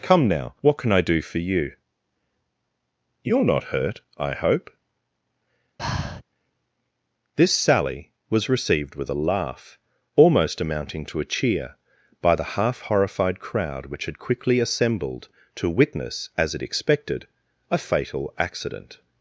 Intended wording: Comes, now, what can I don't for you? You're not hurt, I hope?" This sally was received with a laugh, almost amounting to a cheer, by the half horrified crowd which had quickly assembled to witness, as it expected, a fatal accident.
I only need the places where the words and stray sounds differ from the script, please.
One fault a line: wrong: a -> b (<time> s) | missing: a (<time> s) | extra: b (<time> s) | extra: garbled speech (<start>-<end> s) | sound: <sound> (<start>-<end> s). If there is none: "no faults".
wrong: Comes -> Come (0.0 s)
wrong: don't -> do (1.0 s)
sound: breath (5.8-6.2 s)